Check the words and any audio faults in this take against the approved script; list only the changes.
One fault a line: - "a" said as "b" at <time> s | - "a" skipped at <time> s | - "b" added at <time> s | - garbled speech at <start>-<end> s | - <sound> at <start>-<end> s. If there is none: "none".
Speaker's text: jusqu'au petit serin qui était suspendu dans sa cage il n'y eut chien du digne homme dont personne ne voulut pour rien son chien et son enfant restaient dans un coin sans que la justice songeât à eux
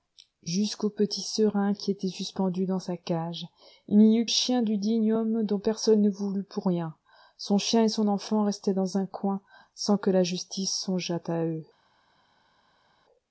none